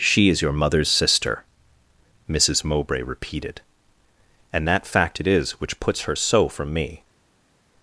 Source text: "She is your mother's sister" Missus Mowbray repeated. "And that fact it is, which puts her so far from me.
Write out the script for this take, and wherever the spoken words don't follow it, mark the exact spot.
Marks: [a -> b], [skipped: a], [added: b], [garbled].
"She is your mother's sister" Missus Mowbray repeated. "And that fact it is, which puts her so [skipped: far] from me.